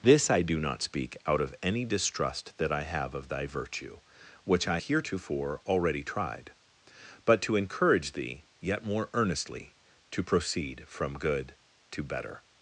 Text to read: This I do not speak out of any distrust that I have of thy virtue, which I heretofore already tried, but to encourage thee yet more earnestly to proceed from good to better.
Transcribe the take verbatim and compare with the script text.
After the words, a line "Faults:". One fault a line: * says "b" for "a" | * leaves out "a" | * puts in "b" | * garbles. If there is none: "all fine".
This I do not speak out of any distrust that I have of thy virtue, which I heretofore already tried, but to encourage thee yet more earnestly to proceed from good to better.
Faults:
all fine